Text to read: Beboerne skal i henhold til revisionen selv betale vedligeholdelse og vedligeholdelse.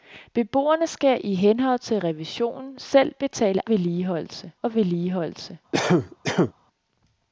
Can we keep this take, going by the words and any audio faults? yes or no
no